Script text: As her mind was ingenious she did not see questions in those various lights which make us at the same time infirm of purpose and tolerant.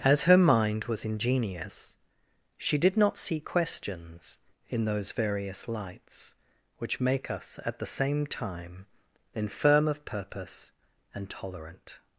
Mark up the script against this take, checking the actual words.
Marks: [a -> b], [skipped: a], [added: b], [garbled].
As her mind was ingenious she did not see questions in those various lights which make us at the same time infirm of purpose and tolerant.